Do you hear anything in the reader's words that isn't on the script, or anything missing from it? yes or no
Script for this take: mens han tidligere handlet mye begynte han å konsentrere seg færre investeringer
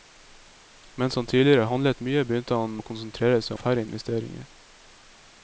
no